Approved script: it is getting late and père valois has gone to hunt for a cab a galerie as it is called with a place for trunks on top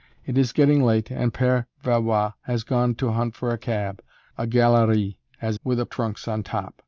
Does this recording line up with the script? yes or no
no